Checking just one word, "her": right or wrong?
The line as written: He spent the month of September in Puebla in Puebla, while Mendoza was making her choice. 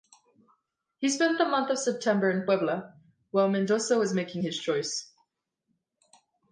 wrong